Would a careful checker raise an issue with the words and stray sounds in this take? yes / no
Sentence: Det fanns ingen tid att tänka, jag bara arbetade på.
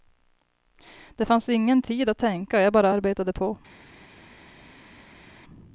no